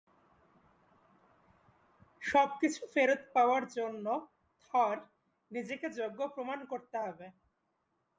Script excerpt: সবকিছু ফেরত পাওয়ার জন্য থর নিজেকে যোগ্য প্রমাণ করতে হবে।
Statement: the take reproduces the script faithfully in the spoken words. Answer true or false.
true